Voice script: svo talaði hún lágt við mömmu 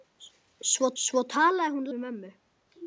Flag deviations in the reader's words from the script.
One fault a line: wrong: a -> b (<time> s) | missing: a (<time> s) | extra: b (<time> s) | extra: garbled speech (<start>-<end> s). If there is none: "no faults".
extra: svo (1.0 s)
missing: lágt (1.9 s)